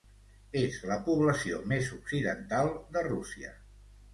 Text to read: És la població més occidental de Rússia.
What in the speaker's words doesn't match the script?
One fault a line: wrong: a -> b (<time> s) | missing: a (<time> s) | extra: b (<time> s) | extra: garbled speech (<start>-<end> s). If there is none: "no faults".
no faults